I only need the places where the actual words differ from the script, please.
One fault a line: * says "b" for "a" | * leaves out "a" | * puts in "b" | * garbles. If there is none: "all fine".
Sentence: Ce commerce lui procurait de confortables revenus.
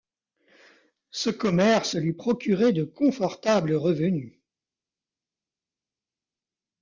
all fine